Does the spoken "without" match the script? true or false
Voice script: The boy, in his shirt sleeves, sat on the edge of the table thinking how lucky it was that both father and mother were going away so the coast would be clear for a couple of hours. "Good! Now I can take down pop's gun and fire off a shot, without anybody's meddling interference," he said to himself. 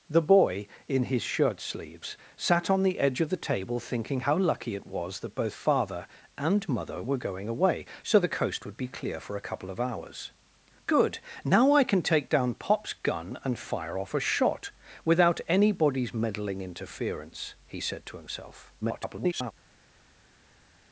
true